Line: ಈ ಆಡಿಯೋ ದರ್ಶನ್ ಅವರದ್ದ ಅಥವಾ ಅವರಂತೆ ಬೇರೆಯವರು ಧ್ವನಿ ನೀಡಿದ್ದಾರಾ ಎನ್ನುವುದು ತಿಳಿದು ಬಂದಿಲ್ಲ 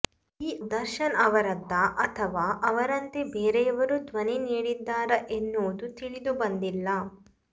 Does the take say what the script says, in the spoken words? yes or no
no